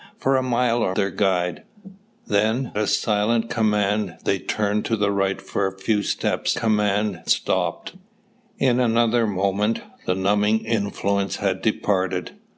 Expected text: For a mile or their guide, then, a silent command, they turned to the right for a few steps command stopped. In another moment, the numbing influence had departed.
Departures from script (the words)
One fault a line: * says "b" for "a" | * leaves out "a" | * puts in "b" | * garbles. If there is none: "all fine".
all fine